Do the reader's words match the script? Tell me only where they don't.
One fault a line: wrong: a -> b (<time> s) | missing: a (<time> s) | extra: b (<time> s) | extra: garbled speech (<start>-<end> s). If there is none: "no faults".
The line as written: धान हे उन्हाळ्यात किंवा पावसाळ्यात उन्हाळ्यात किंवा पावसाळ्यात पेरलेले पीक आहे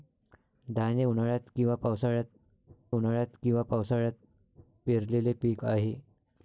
no faults